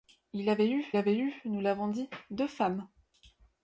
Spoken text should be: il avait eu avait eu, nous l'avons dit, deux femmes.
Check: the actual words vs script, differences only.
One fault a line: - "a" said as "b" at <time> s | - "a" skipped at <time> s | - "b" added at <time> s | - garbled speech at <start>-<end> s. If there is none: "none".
none